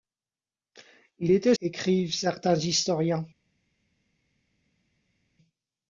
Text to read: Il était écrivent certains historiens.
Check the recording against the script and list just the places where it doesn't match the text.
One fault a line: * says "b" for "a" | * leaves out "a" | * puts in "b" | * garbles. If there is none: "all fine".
all fine